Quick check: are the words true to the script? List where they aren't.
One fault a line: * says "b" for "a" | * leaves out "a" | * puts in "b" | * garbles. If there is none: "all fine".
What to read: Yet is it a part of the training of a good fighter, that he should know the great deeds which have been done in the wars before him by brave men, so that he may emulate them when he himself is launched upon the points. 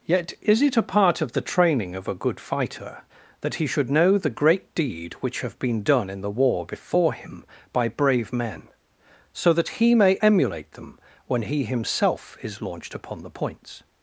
* says "deed" for "deeds"
* says "war" for "wars"